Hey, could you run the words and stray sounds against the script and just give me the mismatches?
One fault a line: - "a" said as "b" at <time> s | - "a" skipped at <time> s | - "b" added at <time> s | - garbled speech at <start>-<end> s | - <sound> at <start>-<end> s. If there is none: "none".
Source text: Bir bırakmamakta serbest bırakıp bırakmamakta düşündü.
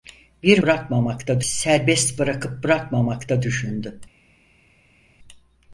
none